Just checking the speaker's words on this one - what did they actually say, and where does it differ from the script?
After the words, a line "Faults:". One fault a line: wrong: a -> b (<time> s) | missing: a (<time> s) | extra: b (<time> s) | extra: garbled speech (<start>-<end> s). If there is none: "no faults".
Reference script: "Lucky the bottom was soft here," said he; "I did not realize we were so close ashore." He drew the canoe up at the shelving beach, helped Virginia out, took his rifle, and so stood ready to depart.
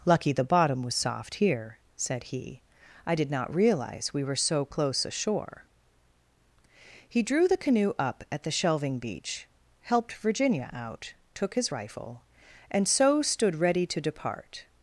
"Lucky the bottom was soft here," said he; "I did not realize we were so close ashore." He drew the canoe up at the shelving beach, helped Virginia out, took his rifle, and so stood ready to depart.
Faults:
no faults